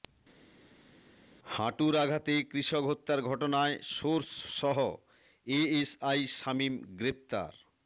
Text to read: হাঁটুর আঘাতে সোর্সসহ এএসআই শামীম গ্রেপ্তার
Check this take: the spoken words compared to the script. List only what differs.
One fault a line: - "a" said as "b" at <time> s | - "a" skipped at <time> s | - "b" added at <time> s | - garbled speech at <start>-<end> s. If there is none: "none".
- "কৃষক হত্যার ঘটনায়" added at 2.5 s